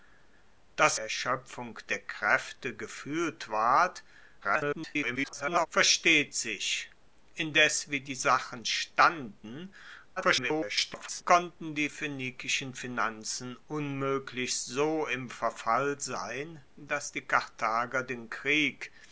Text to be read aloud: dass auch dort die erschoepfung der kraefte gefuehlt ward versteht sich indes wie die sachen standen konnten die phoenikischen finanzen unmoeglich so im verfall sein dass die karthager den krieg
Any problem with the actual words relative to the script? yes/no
yes